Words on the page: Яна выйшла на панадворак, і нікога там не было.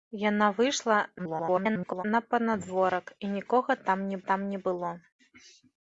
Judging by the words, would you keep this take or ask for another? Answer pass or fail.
fail